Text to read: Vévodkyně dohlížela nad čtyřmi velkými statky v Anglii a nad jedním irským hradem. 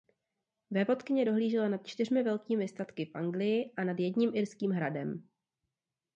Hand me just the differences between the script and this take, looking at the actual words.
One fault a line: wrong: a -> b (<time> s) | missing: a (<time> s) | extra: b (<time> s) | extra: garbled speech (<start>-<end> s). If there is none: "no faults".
no faults